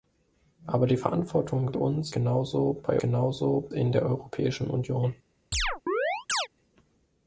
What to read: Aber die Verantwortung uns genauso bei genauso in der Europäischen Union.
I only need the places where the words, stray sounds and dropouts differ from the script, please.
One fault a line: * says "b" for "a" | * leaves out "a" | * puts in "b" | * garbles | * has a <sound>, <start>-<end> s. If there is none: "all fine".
* has a chirp, 5.5-6.5 s